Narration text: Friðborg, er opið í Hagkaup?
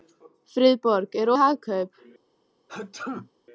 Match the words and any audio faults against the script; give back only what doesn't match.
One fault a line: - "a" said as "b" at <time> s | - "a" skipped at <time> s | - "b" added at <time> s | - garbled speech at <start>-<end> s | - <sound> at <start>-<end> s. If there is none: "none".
- "opið" skipped at 1.3 s
- sneeze at 2.7-3.3 s